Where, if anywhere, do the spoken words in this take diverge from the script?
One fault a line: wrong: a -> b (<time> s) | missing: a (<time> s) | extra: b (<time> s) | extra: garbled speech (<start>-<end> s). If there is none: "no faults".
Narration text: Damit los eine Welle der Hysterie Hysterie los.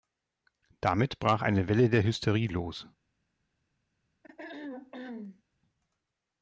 wrong: los -> brach (1.2 s)
missing: Hysterie (2.5 s)